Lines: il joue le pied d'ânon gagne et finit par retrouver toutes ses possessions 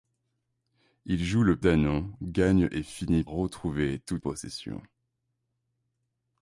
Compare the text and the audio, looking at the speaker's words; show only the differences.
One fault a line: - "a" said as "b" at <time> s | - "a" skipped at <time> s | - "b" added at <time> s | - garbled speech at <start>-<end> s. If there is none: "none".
- "pied" skipped at 1.6 s
- "par" skipped at 3.2 s
- "ses" skipped at 4.2 s